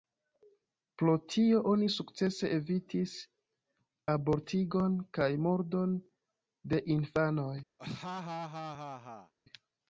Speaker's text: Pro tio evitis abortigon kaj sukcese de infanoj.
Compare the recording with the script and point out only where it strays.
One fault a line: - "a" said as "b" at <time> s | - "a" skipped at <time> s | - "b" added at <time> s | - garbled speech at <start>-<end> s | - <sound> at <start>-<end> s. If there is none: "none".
- "oni sukcese" added at 1.7 s
- "sukcese" said as "murdon" at 5.5 s
- laugh at 7.8-9.3 s